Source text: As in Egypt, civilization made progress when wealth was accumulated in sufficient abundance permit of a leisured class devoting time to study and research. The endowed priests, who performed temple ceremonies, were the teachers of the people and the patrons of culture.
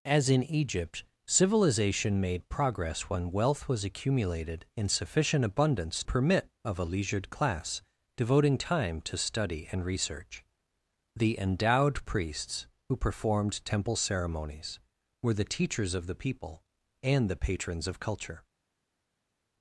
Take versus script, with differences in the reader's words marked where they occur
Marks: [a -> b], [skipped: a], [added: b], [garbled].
As in Egypt, civilization made progress when wealth was accumulated in sufficient abundance permit of a leisured class devoting time to study and research. The endowed priests, who performed temple ceremonies, were the teachers of the people and the patrons of culture.